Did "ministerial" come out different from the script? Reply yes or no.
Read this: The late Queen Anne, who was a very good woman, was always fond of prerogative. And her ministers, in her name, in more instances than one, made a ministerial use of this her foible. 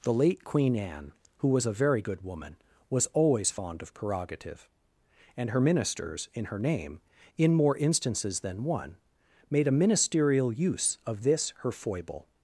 no